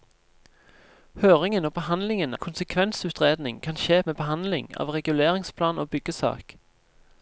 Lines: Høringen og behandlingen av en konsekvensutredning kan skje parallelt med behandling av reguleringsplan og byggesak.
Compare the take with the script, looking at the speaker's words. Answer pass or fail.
fail